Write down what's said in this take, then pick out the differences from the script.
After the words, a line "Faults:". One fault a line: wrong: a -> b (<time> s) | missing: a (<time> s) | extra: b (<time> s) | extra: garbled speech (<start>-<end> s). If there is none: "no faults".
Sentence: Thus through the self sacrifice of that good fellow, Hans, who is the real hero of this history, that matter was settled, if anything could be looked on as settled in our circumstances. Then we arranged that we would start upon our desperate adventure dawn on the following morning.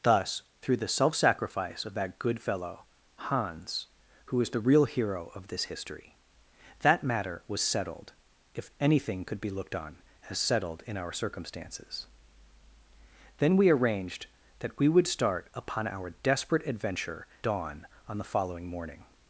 Thus through the self sacrifice of that good fellow, Hans, who is the real hero of this history, that matter was settled, if anything could be looked on as settled in our circumstances. Then we arranged that we would start upon our desperate adventure dawn on the following morning.
Faults:
no faults